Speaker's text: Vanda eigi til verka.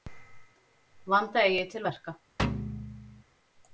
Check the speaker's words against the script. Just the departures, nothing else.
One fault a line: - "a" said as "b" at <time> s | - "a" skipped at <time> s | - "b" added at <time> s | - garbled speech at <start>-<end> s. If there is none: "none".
none